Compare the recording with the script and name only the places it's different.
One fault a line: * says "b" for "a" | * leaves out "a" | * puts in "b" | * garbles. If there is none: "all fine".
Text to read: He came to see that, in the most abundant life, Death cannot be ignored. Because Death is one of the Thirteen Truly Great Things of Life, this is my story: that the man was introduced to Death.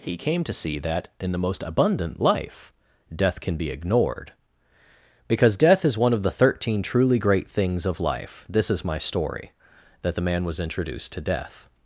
* says "can" for "cannot"